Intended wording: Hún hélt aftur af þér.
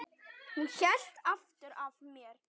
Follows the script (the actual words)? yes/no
no